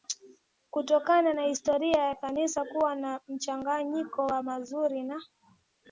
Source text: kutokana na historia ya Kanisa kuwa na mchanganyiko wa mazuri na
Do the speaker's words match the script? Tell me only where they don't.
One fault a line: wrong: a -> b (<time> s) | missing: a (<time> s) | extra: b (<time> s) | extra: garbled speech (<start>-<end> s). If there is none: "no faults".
no faults